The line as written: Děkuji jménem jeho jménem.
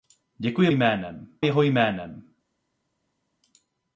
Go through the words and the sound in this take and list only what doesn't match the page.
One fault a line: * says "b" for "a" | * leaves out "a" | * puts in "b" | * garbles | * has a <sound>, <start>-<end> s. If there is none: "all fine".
all fine